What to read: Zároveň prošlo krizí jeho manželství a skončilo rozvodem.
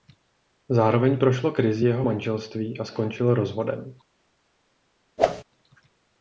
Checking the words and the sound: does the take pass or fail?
fail